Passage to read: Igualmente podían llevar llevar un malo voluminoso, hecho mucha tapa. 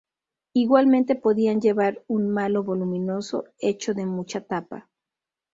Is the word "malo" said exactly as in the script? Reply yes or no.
yes